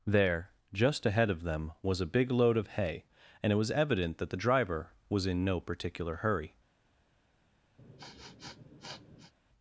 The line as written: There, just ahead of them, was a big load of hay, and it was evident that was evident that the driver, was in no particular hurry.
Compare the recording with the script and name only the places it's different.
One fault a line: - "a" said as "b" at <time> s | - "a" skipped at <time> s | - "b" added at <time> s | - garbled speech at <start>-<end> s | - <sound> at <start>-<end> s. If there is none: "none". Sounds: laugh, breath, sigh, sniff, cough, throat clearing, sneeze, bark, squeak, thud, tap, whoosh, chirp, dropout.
- "was evident that" skipped at 4.3 s
- sniff at 7.8-9.3 s